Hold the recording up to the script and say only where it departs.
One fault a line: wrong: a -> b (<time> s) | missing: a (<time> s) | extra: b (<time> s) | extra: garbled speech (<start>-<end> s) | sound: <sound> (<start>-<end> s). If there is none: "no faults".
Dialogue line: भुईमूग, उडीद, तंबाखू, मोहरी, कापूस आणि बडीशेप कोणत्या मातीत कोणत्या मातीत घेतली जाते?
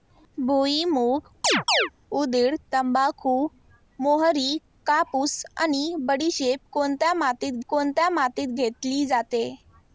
sound: chirp (1.4-1.9 s)